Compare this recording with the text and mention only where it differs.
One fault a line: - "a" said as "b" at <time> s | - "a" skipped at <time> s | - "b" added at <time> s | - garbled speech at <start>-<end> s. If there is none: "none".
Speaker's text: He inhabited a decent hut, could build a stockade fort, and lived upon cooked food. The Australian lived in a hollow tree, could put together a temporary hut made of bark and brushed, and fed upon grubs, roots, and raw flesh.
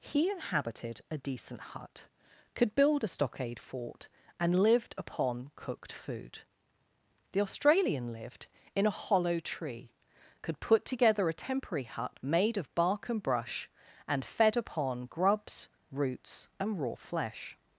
- "brushed" said as "brush" at 13.2 s